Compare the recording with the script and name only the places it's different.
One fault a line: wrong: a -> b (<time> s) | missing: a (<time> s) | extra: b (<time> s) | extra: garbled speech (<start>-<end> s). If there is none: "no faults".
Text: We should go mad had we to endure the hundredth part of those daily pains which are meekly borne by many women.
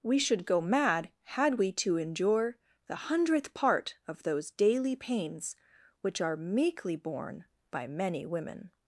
no faults